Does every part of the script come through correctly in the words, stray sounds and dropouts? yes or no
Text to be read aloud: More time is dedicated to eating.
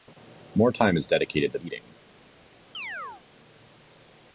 no